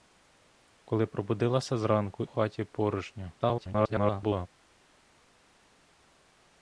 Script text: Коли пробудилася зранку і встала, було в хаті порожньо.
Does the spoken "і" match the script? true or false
false